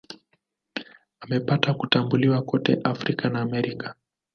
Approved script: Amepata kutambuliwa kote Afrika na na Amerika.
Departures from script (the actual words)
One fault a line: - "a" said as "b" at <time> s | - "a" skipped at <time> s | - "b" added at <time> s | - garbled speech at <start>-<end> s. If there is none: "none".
- "na" skipped at 3.4 s